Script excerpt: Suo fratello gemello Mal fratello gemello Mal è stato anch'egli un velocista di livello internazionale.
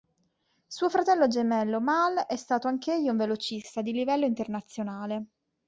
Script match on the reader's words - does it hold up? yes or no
no